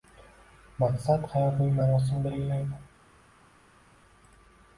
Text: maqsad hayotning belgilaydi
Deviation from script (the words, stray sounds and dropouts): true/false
true